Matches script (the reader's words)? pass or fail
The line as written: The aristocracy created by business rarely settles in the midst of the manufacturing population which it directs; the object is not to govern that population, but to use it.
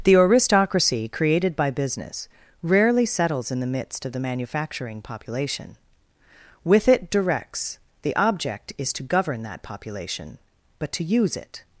fail